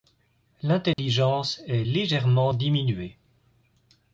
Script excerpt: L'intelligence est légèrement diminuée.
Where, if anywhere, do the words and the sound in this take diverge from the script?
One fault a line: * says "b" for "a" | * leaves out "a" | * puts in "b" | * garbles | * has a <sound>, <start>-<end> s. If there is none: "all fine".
* has a dropout, 0.9-1.0 s